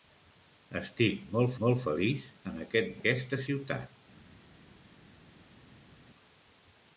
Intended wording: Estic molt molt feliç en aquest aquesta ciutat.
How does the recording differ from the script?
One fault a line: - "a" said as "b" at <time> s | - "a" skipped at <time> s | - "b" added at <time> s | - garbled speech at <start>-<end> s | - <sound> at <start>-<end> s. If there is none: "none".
none